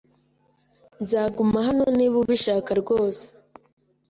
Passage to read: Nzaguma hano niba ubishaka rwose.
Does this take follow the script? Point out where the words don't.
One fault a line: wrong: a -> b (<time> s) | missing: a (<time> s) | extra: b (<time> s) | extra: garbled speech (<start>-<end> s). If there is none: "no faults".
no faults